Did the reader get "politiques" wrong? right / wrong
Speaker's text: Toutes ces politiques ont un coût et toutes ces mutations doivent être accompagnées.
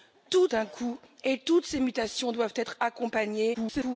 wrong